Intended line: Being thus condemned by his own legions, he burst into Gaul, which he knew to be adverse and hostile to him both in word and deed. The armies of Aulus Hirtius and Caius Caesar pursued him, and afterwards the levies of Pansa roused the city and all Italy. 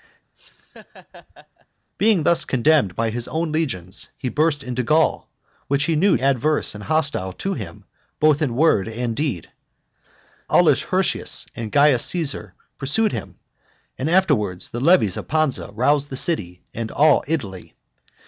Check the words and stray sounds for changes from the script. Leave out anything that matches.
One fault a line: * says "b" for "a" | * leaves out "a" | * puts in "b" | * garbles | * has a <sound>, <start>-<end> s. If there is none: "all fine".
* has a laugh, 0.3-1.7 s
* leaves out "to be"
* leaves out "The armies of"